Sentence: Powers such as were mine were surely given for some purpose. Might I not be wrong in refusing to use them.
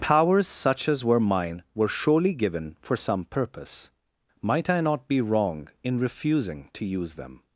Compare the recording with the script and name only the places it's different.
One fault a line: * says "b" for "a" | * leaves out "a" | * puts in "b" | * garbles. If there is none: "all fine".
all fine